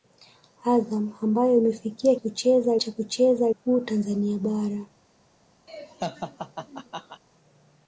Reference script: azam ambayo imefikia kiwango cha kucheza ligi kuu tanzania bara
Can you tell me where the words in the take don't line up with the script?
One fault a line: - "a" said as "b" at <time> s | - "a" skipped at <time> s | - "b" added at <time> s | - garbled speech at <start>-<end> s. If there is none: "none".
- "kiwango" said as "kucheza" at 2.2 s
- "ligi" skipped at 3.5 s